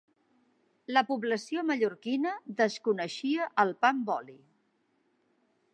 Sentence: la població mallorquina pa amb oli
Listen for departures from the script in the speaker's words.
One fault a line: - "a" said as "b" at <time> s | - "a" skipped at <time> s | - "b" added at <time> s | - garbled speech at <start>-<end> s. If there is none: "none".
- "desconeixia el" added at 2.6 s